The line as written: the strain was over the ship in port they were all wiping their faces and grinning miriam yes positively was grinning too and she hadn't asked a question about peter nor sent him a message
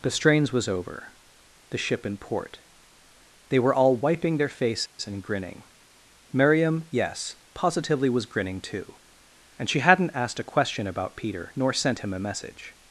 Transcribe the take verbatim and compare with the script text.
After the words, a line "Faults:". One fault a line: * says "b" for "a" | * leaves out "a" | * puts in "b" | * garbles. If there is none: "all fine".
the strains was over the ship in port they were all wiping their faces and grinning miriam yes positively was grinning too and she hadn't asked a question about peter nor sent him a message
Faults:
* says "strains" for "strain"